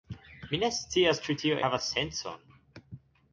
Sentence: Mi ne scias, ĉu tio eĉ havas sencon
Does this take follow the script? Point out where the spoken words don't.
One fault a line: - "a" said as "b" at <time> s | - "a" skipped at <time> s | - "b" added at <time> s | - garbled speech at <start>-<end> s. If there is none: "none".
- "eĉ" skipped at 1.6 s